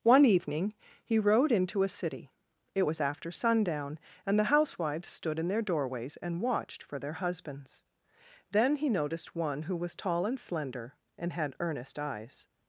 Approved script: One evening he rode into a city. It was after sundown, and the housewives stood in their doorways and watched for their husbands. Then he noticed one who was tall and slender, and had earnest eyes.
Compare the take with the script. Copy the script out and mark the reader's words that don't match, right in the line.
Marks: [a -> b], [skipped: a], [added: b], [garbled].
One evening he rode into a city. It was after sundown, and the housewives stood in their doorways and watched for their husbands. Then he noticed one who was tall and slender, and had earnest eyes.